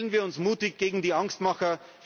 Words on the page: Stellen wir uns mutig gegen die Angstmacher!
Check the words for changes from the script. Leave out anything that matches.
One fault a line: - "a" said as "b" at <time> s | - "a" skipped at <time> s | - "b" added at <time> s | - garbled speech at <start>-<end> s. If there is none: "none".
none